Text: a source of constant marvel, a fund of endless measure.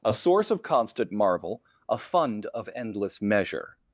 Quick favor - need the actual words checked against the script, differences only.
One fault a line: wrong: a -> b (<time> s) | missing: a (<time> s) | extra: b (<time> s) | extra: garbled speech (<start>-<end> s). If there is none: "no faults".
no faults